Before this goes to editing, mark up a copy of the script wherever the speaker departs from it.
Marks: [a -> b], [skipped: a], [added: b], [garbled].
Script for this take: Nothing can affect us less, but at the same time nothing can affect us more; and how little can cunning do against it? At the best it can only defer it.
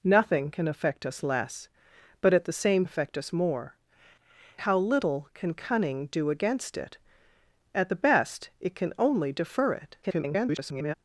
Nothing can affect us less, but at the same [skipped: time nothing can] affect us more; [skipped: and] how little can cunning do against it? At the best it can only defer it. [garbled]